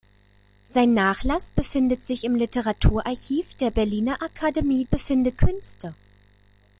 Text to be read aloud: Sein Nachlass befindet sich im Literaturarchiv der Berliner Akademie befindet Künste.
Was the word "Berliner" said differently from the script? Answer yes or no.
no